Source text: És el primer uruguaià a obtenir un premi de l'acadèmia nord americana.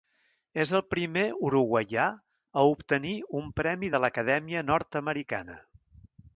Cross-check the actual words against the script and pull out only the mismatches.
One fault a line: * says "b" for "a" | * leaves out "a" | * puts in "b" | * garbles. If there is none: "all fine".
all fine